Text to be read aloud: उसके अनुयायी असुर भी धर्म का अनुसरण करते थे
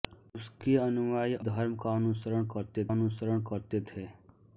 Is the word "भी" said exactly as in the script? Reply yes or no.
no